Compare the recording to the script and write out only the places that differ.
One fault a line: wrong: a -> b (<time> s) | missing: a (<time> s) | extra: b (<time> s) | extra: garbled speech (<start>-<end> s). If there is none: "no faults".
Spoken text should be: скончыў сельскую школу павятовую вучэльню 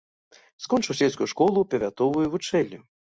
no faults